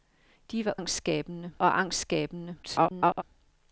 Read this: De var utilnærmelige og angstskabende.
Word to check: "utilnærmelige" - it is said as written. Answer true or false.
false